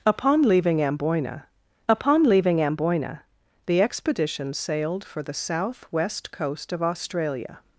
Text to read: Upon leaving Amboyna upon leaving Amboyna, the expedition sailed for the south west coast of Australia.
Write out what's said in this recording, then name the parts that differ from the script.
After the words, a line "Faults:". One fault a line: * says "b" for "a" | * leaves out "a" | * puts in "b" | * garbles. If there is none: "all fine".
Upon leaving Amboyna upon leaving Amboyna, the expedition sailed for the south west coast of Australia.
Faults:
all fine